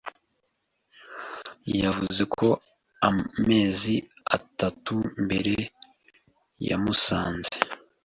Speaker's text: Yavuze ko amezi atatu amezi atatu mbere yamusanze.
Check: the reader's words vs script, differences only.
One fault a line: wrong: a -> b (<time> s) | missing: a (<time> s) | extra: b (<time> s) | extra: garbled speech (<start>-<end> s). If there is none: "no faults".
missing: amezi atatu (4.9 s)